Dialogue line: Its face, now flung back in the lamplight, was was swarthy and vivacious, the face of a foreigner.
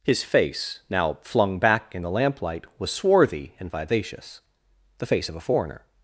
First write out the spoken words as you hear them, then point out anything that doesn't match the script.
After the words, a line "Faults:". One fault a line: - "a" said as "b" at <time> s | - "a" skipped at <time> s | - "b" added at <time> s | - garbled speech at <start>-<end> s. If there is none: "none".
His face, now flung back in the lamplight, was swarthy and vivacious, the face of a foreigner.
Faults:
- "Its" said as "His" at 0.0 s
- "was" skipped at 2.9 s